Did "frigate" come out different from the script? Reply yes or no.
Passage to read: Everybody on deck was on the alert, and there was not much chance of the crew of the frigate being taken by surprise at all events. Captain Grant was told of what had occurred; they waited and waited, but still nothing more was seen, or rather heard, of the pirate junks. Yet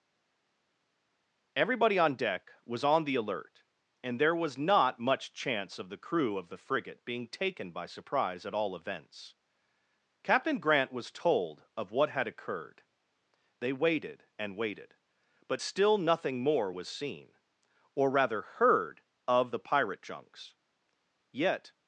no